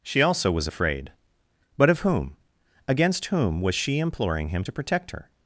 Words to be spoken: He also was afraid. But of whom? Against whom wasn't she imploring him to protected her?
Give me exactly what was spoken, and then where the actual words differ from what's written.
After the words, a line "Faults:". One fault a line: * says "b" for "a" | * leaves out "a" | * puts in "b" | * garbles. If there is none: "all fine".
She also was afraid. But of whom? Against whom was she imploring him to protect her?
Faults:
* says "She" for "He"
* says "was" for "wasn't"
* says "protect" for "protected"